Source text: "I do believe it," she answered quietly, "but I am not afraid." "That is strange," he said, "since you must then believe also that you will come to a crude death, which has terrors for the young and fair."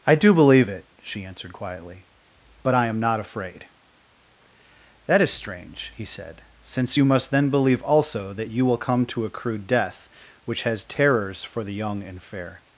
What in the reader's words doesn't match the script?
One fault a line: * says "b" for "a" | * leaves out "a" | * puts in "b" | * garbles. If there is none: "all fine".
all fine